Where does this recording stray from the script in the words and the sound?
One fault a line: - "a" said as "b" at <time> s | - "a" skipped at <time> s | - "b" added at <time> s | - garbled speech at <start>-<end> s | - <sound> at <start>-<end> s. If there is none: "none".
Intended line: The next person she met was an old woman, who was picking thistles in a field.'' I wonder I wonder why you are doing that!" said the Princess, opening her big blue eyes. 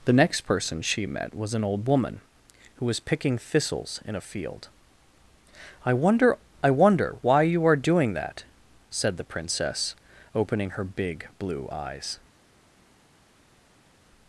none